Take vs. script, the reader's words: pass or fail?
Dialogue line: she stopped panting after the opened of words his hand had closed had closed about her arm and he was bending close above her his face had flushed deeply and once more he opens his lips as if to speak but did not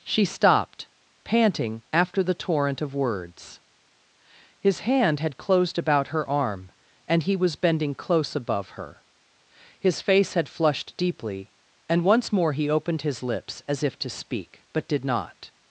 fail